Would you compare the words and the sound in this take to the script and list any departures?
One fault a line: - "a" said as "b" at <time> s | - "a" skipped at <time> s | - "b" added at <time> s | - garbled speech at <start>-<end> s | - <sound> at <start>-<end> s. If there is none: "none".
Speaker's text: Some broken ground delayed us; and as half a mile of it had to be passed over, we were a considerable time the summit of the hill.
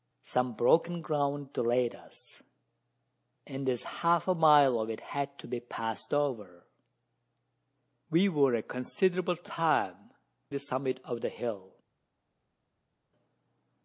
none